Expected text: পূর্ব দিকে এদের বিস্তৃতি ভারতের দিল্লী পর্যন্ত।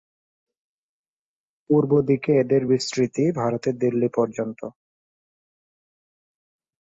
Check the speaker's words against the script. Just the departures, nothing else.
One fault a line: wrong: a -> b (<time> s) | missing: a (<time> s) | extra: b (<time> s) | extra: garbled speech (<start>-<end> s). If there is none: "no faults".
no faults